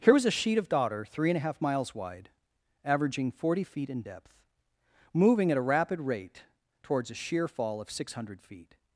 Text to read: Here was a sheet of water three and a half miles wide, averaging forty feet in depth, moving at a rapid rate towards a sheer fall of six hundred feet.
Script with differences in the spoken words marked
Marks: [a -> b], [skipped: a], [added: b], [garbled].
Here was a sheet of [water -> daughter] three and a half miles wide, averaging forty feet in depth, moving at a rapid rate towards a sheer fall of six hundred feet.